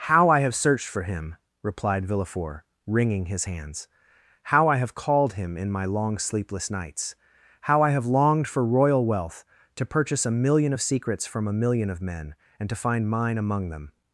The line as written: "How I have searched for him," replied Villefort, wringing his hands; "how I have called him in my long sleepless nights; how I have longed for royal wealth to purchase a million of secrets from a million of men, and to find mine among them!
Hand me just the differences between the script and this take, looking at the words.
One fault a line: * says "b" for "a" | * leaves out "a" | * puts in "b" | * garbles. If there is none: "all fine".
all fine